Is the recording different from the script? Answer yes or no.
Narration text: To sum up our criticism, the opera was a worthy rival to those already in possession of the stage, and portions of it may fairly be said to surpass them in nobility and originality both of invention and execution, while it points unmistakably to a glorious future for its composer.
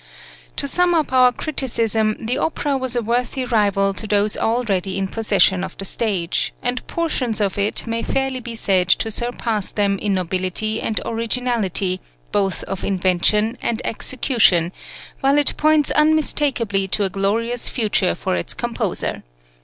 no